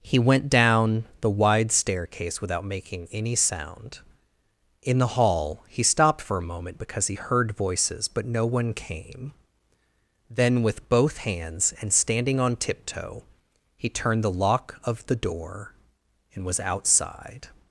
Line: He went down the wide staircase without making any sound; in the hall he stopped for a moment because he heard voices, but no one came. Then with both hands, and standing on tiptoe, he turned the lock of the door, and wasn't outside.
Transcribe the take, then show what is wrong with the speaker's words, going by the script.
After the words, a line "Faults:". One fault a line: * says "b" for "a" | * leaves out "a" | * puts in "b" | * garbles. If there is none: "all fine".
He went down the wide staircase without making any sound; in the hall he stopped for a moment because he heard voices, but no one came. Then with both hands, and standing on tiptoe, he turned the lock of the door, and was outside.
Faults:
* says "was" for "wasn't"